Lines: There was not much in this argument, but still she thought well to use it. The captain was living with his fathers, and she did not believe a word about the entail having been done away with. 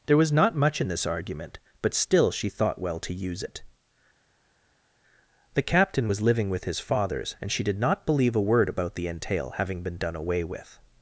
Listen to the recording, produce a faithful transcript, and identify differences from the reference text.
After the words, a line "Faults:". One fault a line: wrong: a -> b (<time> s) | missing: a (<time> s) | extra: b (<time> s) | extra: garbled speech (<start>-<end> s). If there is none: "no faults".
There was not much in this argument, but still she thought well to use it. The captain was living with his fathers, and she did not believe a word about the entail having been done away with.
Faults:
no faults